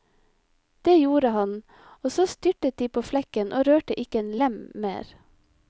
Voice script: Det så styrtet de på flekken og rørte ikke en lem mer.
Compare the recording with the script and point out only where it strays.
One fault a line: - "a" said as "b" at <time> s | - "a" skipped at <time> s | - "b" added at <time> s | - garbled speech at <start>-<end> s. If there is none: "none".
- "gjorde han og" added at 1.0 s